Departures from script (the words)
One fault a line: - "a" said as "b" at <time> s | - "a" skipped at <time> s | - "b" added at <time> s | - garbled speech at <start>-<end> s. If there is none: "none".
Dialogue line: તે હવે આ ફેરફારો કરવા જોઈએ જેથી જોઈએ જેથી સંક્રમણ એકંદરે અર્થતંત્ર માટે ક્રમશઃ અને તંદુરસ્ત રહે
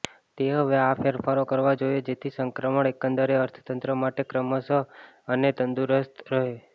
- "જોઈએ જેથી" skipped at 2.3 s